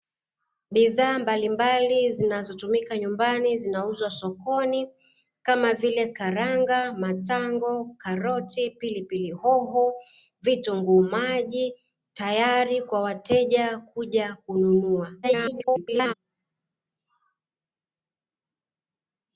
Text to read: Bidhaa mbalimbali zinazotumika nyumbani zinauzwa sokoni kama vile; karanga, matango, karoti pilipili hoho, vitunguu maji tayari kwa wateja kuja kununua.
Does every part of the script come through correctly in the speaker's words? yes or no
no